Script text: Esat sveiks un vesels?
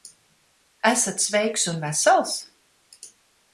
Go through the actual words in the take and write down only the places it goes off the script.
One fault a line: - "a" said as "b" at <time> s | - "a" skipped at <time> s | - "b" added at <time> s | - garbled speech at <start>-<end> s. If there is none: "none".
none